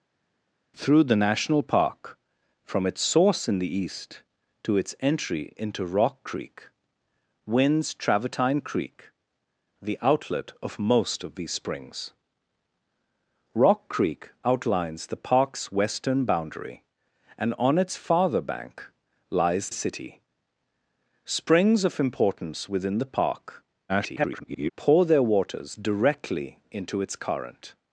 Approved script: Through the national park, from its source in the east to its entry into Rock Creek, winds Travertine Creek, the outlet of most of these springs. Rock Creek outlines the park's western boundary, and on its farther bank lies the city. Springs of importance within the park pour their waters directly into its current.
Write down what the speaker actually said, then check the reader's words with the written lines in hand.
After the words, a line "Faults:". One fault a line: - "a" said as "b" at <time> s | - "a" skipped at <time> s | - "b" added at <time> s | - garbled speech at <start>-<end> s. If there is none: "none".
Through the national park, from its source in the east to its entry into Rock Creek, winds Travertine Creek, the outlet of most of these springs. Rock Creek outlines the park's western boundary, and on its farther bank lies city. Springs of importance within the park [garbled] pour their waters directly into its current.
Faults:
- "the" skipped at 19.7 s
- garbled speech at 23.9-24.7 s